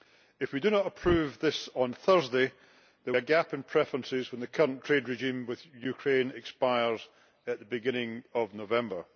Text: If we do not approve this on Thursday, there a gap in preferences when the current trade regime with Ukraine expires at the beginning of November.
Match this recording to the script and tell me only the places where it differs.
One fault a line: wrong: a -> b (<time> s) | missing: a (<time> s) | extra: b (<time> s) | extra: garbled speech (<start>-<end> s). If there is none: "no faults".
no faults